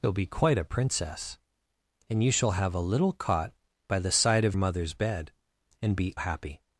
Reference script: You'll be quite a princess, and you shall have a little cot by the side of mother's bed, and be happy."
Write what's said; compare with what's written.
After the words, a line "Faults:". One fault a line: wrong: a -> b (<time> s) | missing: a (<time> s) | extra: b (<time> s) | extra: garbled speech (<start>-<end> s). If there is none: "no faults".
You'll be quite a princess, and you shall have a little cot by the side of mother's bed, and be happy."
Faults:
no faults